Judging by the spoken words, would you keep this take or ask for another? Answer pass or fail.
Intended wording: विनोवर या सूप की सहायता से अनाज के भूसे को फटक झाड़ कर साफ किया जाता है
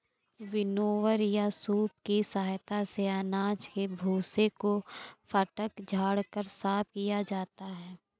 pass